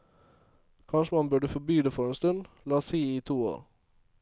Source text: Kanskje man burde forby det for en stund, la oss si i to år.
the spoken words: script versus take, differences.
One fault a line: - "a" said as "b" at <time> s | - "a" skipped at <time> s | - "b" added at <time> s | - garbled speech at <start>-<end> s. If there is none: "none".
none